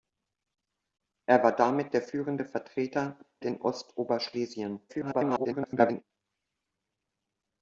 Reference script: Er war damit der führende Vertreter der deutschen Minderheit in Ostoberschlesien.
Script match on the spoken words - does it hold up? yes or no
no